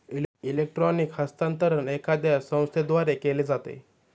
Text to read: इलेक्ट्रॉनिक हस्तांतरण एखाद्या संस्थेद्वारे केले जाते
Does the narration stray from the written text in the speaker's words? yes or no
no